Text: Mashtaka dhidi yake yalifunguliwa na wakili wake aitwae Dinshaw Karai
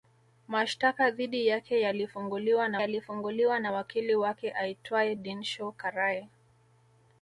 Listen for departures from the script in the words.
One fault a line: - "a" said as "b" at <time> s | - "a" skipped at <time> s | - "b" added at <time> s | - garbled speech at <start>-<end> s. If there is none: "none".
- "yalifunguliwa na" added at 2.8 s